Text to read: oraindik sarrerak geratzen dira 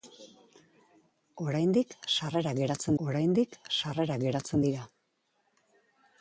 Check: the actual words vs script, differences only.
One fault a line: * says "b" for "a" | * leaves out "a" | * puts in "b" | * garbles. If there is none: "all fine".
* puts in "oraindik sarrerak geratzen"